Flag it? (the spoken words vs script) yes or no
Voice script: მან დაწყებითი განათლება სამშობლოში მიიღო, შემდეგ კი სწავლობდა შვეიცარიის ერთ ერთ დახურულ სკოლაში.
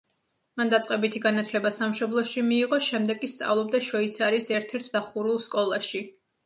no